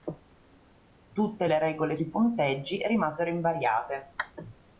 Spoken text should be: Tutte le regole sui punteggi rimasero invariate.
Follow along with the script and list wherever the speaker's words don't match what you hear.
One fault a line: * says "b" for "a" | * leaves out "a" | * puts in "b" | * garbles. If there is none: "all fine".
all fine